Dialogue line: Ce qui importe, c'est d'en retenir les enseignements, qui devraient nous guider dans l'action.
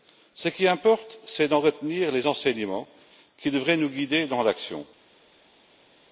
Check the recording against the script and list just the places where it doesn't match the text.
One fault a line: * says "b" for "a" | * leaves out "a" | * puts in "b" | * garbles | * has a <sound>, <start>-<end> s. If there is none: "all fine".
all fine